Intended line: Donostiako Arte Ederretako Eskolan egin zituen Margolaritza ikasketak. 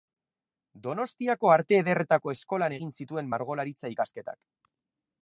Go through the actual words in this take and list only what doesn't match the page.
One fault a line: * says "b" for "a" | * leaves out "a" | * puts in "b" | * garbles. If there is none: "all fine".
all fine